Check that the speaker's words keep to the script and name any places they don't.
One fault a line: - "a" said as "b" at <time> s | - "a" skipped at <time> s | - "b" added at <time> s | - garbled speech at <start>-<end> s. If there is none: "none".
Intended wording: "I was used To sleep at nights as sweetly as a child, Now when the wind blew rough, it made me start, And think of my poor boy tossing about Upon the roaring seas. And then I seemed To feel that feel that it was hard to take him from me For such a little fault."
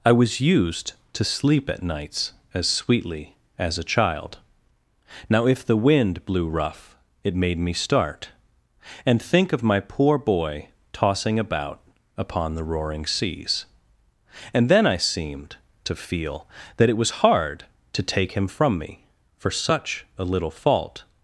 - "when" said as "if" at 5.5 s
- "feel that" skipped at 16.9 s